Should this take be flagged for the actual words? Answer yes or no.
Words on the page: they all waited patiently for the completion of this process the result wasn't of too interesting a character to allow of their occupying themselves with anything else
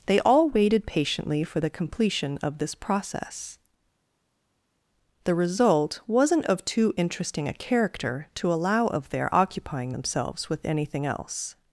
no